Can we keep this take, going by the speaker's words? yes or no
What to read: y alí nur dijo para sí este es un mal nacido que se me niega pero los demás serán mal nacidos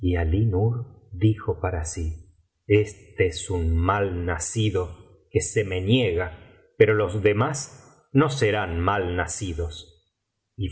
no